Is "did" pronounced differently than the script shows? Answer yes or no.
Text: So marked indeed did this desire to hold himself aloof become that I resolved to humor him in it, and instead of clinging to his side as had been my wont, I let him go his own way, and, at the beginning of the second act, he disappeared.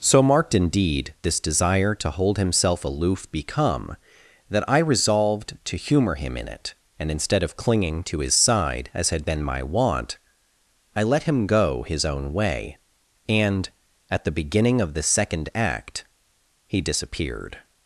yes